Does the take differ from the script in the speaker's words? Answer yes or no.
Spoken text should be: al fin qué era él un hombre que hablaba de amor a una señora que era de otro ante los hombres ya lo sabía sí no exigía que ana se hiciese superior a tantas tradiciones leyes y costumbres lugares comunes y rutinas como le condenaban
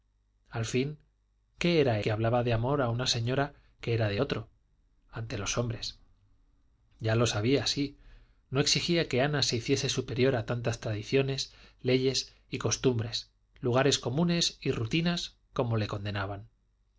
yes